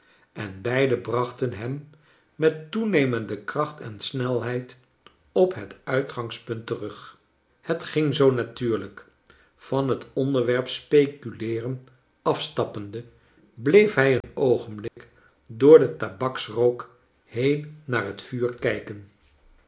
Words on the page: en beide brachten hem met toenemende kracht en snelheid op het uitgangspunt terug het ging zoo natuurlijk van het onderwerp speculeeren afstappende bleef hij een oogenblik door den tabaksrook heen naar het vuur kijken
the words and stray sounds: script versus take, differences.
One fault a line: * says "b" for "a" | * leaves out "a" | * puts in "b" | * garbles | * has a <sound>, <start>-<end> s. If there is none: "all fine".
* has a dropout, 14.2-14.2 s
* has a dropout, 14.9-15.0 s